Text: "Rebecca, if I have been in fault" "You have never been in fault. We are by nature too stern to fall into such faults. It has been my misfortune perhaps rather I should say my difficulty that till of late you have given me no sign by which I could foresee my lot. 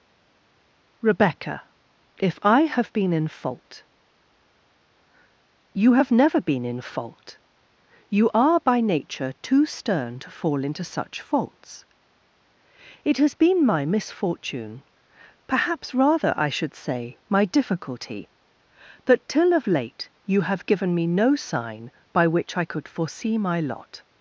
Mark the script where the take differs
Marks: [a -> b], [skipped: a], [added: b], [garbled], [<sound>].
"Rebecca, if I have been in fault" "You have never been in fault. [We -> You] are by nature too stern to fall into such faults. It has been my misfortune perhaps rather I should say my difficulty that till of late you have given me no sign by which I could foresee my lot.